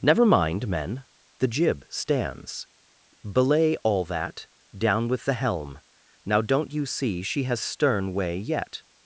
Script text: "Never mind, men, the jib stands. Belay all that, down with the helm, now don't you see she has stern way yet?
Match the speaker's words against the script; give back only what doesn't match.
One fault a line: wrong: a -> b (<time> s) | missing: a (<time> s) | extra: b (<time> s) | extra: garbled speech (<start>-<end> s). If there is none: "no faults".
no faults